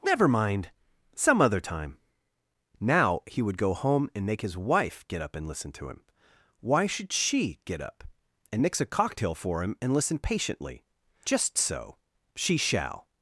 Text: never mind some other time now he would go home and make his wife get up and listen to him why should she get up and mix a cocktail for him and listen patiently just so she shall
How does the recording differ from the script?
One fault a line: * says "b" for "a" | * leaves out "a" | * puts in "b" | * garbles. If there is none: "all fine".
all fine